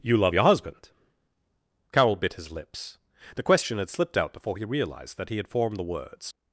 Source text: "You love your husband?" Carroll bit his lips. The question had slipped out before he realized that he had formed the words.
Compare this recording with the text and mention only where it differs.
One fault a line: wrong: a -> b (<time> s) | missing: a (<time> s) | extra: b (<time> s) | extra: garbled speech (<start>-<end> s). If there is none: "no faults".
no faults